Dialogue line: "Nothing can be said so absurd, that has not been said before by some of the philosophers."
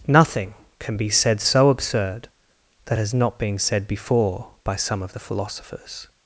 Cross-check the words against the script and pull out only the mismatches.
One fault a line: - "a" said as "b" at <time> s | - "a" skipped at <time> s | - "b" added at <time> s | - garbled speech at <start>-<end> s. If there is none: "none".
none